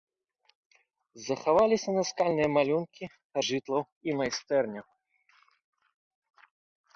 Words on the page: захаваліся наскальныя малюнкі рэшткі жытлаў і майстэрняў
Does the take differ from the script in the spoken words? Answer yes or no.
yes